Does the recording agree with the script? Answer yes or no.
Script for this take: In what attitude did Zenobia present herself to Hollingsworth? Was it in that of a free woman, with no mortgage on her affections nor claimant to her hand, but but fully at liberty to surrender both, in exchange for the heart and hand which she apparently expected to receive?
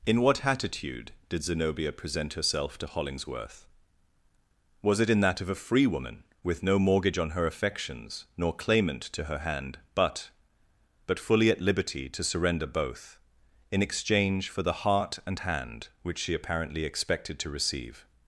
yes